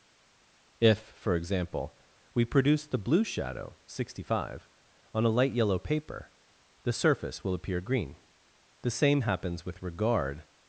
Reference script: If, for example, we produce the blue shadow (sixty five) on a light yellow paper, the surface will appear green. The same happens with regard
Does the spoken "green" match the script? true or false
true